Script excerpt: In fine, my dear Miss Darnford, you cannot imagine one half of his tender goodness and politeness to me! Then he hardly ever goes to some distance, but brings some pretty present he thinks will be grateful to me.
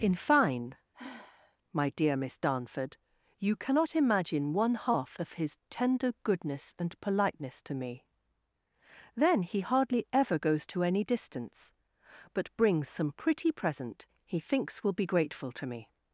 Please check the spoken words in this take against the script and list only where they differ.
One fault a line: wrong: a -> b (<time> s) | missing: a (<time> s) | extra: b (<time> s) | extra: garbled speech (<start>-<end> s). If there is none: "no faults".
wrong: some -> any (10.8 s)